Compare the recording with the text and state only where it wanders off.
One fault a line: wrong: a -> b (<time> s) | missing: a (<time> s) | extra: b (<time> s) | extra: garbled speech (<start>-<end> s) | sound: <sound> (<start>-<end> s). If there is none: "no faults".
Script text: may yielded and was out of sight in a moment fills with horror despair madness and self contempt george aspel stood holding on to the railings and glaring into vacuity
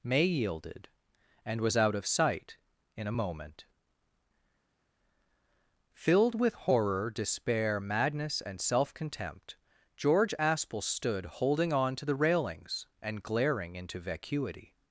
wrong: fills -> filled (5.9 s)